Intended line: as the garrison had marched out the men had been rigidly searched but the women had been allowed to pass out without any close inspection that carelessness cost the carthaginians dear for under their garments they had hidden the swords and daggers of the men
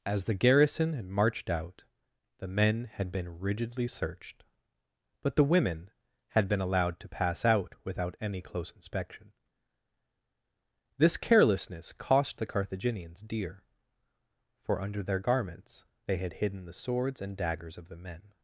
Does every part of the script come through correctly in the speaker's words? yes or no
no